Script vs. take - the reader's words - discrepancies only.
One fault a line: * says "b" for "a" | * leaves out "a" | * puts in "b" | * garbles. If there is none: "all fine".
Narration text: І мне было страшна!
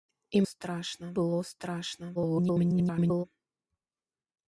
* says "страшна" for "мне"
* garbles